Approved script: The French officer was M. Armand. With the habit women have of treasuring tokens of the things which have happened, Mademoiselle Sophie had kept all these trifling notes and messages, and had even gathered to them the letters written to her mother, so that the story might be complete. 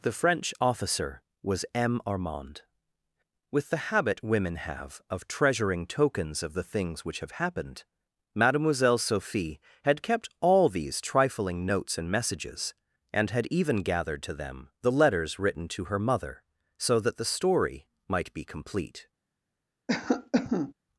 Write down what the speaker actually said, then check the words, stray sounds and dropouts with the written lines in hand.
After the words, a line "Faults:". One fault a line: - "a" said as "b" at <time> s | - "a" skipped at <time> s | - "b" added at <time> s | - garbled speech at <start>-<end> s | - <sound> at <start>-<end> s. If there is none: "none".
The French officer was M. Armand. With the habit women have of treasuring tokens of the things which have happened, Mademoiselle Sophie had kept all these trifling notes and messages, and had even gathered to them the letters written to her mother, so that the story might be complete.
Faults:
- cough at 19.9-20.7 s